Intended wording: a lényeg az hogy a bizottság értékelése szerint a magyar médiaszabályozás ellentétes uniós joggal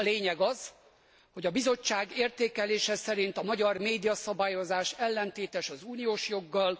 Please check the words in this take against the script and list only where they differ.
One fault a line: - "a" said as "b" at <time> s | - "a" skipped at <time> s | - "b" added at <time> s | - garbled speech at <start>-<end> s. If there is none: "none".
- "az" added at 5.7 s